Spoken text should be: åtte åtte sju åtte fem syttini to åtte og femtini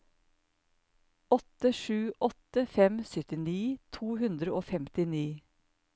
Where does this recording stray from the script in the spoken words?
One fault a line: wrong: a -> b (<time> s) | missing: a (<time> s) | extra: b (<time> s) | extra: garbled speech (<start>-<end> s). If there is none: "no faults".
missing: åtte (1.7 s)
wrong: åtte -> hundre (4.2 s)